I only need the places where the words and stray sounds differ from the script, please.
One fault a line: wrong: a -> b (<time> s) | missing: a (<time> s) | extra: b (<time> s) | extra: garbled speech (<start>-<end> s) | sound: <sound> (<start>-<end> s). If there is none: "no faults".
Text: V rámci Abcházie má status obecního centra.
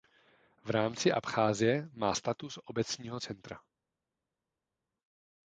no faults